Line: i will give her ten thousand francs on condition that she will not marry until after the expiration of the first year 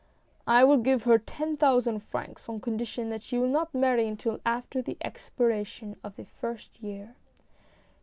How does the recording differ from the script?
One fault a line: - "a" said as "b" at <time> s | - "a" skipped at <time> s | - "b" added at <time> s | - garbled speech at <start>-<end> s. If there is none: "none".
none